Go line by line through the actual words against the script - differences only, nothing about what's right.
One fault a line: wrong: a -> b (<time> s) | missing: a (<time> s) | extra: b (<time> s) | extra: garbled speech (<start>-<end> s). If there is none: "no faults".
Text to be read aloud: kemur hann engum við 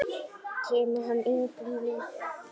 no faults